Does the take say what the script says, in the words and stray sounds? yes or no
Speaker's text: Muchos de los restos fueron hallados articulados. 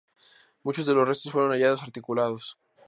yes